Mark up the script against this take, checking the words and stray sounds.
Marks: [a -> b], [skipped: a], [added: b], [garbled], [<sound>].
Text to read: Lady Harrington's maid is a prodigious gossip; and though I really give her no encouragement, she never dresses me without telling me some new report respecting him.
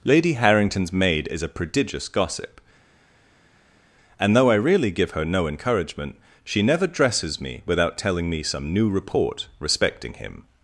Lady Harrington's maid is a prodigious gossip; and though I really give her no encouragement, she never dresses me without telling me some new report respecting him.